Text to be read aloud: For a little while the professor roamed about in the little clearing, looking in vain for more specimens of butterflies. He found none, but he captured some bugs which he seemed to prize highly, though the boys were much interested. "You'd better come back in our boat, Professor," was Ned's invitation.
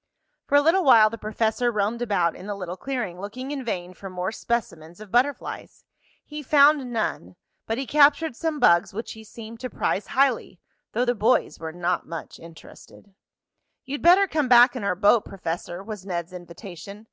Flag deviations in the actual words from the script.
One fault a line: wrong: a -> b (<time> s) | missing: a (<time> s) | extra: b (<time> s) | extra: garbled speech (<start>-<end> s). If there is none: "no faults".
extra: not (11.7 s)